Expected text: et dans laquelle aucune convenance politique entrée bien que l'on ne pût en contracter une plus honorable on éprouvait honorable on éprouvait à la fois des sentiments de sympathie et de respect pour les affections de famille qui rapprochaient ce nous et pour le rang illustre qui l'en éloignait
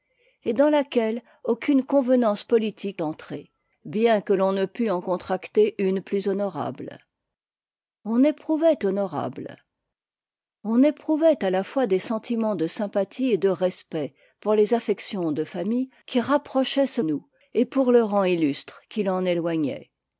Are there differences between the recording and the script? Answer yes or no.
no